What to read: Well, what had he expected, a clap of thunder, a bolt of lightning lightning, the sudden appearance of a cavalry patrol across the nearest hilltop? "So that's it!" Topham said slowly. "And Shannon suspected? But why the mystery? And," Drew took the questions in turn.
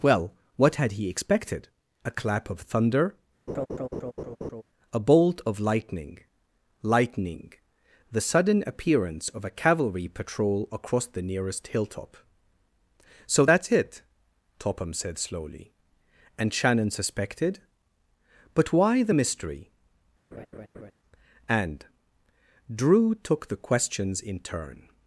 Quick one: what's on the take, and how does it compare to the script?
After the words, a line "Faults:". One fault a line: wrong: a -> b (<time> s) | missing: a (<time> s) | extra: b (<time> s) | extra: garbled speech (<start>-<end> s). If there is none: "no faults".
Well, what had he expected, a clap of thunder, a bolt of lightning lightning, the sudden appearance of a cavalry patrol across the nearest hilltop? "So that's it!" Topham said slowly. "And Shannon suspected? But why the mystery? And," Drew took the questions in turn.
Faults:
no faults